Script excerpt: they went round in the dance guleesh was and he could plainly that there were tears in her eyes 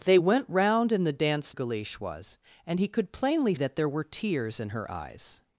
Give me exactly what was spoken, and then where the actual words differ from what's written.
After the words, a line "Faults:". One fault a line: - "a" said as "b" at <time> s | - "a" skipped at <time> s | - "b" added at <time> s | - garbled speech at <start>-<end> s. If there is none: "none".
they went round in the dance guleesh was and he could plainly that there were tears in her eyes
Faults:
none